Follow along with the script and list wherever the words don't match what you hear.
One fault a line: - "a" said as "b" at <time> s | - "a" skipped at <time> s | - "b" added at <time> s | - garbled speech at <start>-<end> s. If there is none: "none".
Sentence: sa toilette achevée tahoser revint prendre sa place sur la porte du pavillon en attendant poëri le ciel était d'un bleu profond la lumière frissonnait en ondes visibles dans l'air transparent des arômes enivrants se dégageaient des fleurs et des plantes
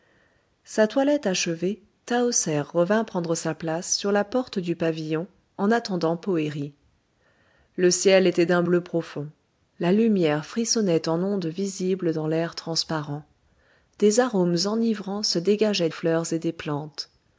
- "des" skipped at 15.9 s